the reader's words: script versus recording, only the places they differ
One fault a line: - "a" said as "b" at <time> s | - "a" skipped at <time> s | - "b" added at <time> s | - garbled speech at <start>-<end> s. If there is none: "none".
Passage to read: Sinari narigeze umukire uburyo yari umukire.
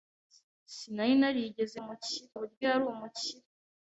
none